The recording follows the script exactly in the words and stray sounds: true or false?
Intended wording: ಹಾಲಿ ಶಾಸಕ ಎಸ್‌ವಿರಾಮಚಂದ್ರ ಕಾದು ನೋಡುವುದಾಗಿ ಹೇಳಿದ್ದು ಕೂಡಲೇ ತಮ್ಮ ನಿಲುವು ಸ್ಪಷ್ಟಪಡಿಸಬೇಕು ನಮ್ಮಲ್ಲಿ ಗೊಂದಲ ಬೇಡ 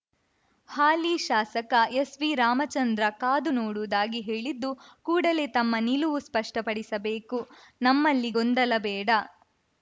true